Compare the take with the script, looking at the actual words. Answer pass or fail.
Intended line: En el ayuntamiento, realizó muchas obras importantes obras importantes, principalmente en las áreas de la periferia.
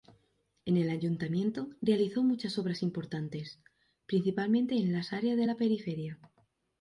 fail